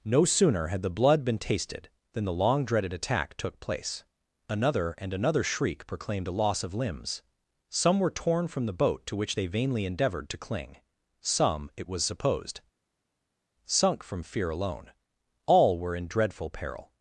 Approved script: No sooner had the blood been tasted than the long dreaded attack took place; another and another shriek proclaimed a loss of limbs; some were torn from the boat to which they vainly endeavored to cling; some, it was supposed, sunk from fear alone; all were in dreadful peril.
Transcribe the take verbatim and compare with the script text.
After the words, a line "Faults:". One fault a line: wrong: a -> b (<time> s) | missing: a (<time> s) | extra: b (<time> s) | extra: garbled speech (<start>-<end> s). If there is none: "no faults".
No sooner had the blood been tasted than the long dreaded attack took place; another and another shriek proclaimed a loss of limbs; some were torn from the boat to which they vainly endeavored to cling; some, it was supposed, sunk from fear alone; all were in dreadful peril.
Faults:
no faults